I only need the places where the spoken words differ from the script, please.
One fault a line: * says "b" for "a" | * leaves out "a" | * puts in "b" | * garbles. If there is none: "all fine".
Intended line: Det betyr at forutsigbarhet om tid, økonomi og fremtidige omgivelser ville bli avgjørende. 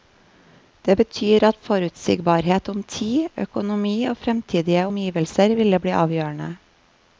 all fine